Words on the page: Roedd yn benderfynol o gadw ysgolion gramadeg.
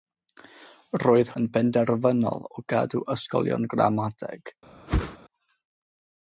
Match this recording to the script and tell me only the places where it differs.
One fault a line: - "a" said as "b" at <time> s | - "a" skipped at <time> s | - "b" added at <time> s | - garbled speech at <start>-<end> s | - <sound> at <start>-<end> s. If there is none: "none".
- whoosh at 4.9-5.2 s